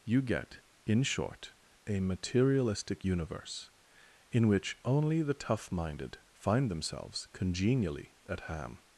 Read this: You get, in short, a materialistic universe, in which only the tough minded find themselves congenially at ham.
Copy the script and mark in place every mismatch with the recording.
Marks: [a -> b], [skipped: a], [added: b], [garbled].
You get, in short, a materialistic universe, in which only the tough minded find themselves congenially at ham.